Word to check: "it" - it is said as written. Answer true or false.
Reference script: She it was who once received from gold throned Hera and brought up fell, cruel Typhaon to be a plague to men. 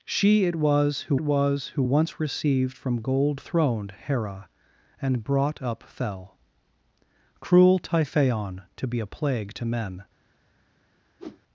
true